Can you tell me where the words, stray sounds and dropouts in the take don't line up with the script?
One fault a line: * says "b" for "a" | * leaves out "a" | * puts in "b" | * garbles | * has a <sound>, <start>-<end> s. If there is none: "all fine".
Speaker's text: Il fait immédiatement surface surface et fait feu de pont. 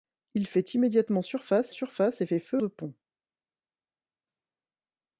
all fine